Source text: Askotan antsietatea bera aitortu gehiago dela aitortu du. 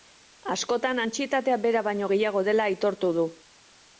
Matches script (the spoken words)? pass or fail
fail